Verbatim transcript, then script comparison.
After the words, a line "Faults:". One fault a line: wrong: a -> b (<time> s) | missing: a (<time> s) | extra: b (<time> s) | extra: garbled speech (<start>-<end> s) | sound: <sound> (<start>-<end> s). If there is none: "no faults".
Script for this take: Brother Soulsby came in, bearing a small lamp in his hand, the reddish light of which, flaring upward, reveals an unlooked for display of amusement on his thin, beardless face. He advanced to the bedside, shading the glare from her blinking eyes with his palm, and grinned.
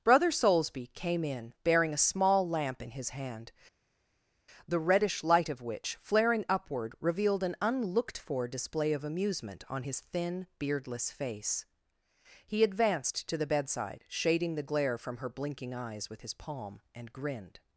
Brother Soulsby came in, bearing a small lamp in his hand, the reddish light of which, flaring upward, revealed an unlooked for display of amusement on his thin, beardless face. He advanced to the bedside, shading the glare from her blinking eyes with his palm, and grinned.
Faults:
wrong: reveals -> revealed (7.0 s)